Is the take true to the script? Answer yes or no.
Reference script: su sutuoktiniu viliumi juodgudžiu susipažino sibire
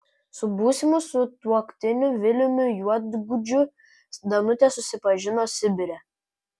no